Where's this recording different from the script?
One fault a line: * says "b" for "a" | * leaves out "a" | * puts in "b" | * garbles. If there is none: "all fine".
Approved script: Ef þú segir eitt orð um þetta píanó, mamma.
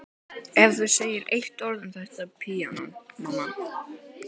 all fine